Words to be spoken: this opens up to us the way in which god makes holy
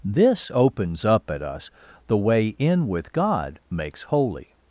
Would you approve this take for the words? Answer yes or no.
no